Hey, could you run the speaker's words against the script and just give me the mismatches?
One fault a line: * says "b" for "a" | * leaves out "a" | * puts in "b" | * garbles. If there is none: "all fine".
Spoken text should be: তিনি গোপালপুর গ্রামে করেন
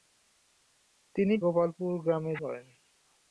all fine